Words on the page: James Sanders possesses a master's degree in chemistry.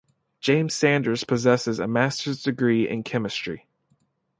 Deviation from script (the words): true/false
false